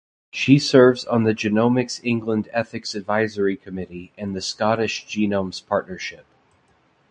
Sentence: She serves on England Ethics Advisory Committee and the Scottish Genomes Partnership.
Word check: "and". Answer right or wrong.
right